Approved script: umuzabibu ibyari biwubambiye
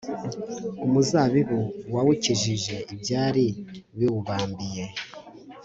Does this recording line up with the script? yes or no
no